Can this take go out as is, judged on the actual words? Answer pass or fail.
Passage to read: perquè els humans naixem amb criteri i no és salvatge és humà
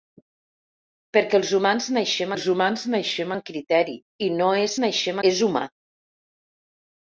fail